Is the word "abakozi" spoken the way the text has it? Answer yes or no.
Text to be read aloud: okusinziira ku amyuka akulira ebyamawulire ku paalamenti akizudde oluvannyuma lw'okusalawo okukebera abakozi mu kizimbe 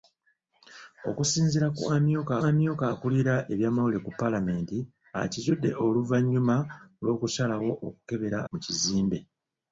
no